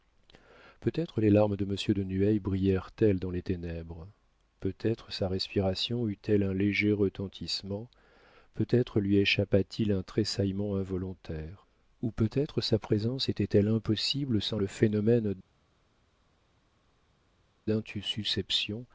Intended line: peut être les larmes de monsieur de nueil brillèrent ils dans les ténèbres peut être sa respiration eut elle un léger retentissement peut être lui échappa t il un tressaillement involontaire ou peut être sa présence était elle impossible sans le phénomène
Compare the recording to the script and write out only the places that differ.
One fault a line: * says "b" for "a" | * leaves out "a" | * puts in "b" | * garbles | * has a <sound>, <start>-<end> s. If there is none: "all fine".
* says "elles" for "ils"